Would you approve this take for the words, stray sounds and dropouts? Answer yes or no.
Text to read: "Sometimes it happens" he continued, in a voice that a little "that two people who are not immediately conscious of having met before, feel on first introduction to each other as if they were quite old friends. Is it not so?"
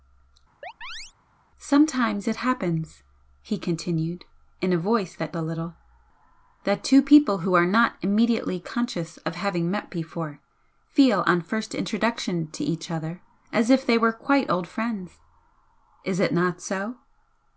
no